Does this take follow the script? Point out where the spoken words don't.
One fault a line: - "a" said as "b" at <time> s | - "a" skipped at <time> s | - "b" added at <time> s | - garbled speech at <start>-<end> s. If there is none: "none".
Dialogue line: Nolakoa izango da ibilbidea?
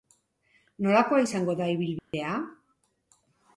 none